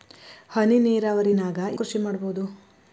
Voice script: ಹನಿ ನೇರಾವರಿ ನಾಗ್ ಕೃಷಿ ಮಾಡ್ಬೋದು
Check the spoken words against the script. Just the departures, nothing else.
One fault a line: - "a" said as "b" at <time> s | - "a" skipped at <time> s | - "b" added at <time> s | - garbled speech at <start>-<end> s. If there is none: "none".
none